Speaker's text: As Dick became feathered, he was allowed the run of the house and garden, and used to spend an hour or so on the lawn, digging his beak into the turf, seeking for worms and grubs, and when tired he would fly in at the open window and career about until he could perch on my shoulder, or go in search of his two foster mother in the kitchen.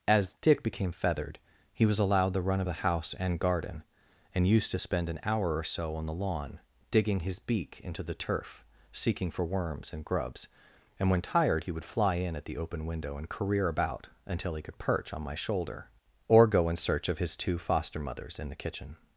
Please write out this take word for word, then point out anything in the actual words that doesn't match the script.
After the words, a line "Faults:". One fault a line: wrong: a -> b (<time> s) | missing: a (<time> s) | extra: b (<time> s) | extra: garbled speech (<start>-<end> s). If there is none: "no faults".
As Dick became feathered, he was allowed the run of the house and garden, and used to spend an hour or so on the lawn, digging his beak into the turf, seeking for worms and grubs, and when tired he would fly in at the open window and career about until he could perch on my shoulder, or go in search of his two foster mothers in the kitchen.
Faults:
wrong: mother -> mothers (18.0 s)